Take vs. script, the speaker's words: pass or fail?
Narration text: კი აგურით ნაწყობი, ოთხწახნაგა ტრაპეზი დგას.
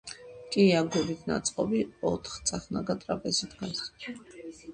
pass